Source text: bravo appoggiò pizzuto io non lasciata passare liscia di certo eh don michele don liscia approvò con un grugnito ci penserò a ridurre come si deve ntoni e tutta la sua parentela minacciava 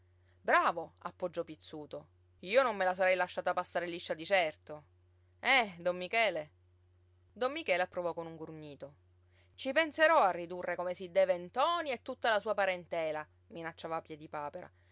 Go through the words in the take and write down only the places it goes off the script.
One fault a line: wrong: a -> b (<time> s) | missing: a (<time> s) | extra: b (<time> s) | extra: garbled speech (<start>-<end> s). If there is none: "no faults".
extra: me la sarei (2.8 s)
wrong: liscia -> michele (7.5 s)